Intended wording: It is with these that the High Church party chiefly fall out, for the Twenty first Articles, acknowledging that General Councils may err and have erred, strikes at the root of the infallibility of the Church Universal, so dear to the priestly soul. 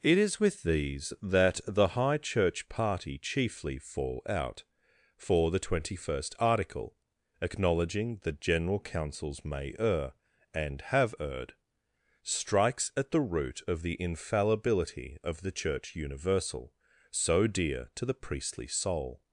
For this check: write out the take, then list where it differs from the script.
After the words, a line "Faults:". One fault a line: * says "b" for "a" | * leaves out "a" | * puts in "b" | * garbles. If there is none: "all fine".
It is with these that the High Church party chiefly fall out, for the Twenty first Article, acknowledging that General Councils may err and have erred, strikes at the root of the infallibility of the Church Universal, so dear to the priestly soul.
Faults:
* says "Article" for "Articles"